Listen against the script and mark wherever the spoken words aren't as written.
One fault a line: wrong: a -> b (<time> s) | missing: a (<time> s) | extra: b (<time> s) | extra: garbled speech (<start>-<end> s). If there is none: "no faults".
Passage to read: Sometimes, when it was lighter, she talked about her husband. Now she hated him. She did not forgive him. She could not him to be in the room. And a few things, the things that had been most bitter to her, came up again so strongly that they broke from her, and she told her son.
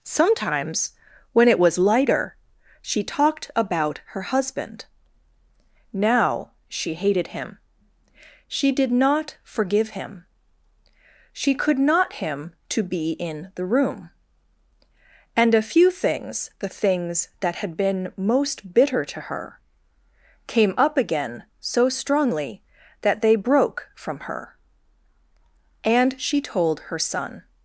no faults